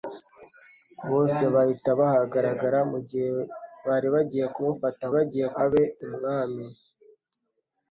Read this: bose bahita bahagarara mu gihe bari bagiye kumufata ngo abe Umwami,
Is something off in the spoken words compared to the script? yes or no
yes